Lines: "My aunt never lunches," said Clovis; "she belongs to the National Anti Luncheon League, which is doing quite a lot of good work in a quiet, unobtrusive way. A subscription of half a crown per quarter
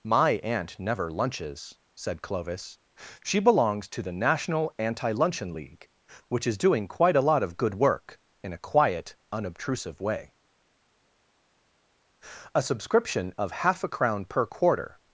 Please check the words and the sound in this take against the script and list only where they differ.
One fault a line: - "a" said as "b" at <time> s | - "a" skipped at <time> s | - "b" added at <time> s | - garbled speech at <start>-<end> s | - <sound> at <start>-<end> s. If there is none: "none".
none